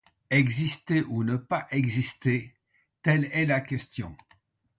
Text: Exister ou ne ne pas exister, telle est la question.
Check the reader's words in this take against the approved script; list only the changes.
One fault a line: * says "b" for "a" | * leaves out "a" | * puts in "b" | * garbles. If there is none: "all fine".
* leaves out "ne"